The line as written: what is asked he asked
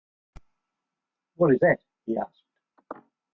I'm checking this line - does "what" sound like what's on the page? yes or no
yes